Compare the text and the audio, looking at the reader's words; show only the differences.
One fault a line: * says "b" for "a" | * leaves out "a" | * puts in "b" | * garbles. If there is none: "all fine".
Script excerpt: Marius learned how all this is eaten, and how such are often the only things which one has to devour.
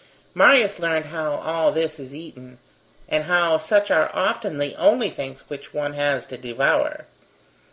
all fine